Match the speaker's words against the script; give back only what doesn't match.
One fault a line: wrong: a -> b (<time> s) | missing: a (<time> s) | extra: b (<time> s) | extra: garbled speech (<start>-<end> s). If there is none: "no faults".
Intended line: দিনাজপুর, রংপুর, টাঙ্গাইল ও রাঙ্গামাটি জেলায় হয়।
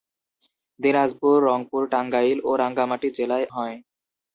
no faults